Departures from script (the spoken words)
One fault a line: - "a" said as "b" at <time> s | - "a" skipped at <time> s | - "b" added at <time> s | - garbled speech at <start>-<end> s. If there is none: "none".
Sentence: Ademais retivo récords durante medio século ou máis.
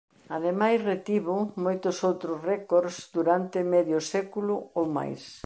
- "moitos outros" added at 1.6 s